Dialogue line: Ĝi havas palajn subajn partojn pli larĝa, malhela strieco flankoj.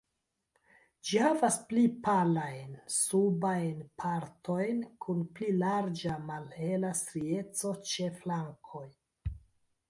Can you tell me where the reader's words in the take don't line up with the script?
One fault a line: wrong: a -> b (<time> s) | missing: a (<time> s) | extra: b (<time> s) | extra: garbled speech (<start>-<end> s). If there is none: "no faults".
extra: pli (1.7 s)
extra: kun (5.1 s)
extra: ĉe (7.9 s)